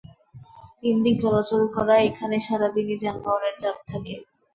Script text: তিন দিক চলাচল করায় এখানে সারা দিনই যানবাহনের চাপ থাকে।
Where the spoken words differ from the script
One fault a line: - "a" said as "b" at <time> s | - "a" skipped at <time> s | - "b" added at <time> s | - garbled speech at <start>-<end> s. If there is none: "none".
none